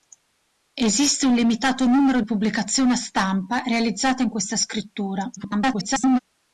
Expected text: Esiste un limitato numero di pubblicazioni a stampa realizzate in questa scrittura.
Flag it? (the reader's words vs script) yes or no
yes